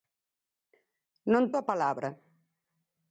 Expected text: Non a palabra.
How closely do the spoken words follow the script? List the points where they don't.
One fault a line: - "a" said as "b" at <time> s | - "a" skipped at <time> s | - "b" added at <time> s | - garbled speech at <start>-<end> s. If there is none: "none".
none